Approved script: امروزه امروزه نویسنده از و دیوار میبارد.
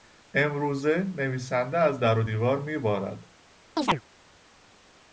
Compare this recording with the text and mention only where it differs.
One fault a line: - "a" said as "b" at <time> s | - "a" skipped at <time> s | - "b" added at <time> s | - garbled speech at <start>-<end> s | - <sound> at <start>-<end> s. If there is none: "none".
- "امروزه" skipped at 1.0 s
- "در" added at 2.0 s
- chirp at 3.8-4.0 s